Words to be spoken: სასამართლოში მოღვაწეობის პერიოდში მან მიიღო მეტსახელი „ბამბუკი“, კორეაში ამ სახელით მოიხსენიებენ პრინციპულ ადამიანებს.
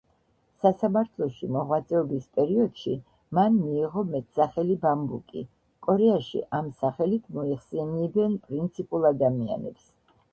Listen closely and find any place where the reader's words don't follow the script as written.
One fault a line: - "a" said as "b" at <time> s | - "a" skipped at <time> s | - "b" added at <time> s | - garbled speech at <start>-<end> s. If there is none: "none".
none